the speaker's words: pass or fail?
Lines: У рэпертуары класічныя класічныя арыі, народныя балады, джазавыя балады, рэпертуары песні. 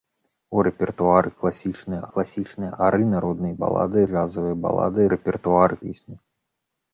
pass